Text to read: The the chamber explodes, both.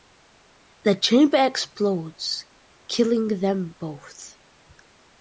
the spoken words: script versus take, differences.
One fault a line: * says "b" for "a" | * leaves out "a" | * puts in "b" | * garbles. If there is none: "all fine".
* leaves out "the"
* puts in "killing them"